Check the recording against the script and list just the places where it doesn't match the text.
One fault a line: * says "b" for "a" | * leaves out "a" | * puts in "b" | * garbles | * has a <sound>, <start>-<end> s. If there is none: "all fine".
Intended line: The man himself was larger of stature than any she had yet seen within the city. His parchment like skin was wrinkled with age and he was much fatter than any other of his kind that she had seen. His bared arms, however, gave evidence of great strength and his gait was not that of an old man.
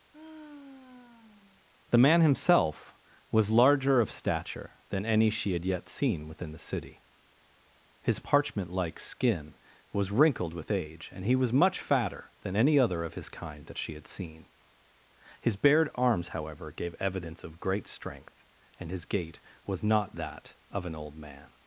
* has a sigh, 0.1-1.7 s